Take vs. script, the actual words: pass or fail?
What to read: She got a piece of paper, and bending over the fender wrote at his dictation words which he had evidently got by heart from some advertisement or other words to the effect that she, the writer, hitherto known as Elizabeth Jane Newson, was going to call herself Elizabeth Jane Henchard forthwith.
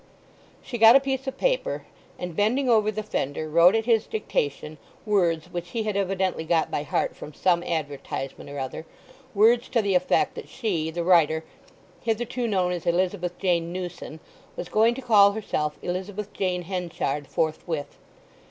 pass